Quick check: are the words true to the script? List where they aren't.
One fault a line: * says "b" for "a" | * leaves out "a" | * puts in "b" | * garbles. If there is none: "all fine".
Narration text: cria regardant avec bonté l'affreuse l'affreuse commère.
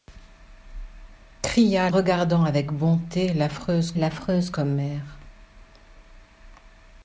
all fine